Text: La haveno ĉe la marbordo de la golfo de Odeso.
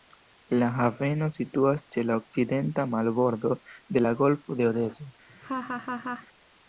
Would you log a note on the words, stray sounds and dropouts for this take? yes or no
yes